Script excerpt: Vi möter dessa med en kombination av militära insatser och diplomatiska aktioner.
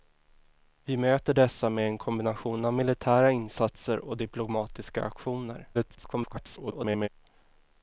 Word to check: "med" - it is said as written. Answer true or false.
true